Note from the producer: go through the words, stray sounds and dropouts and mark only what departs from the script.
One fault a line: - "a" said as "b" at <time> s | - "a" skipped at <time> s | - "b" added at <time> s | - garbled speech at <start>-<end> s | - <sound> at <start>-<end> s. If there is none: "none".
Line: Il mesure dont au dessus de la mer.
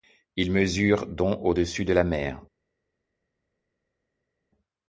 none